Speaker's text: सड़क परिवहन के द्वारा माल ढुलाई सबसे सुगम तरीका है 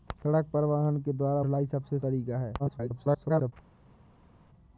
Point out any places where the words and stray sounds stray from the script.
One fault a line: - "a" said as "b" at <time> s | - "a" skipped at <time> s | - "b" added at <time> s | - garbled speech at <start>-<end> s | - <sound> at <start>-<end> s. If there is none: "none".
- "माल" skipped at 1.4 s
- "सुगम" skipped at 2.0 s
- garbled speech at 2.6-3.5 s